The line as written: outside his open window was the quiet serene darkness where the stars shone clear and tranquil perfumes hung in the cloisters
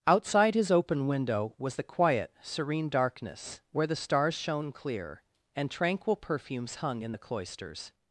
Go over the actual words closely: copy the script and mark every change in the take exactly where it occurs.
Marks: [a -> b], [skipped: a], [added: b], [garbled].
outside his open window was the quiet serene darkness where the stars shone clear and tranquil perfumes hung in the cloisters